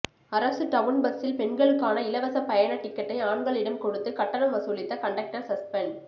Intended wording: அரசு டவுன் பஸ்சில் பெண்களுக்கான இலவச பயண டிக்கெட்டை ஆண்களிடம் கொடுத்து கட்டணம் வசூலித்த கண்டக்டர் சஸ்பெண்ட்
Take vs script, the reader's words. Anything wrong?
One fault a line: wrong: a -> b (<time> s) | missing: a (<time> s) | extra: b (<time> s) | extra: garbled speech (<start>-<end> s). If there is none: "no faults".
no faults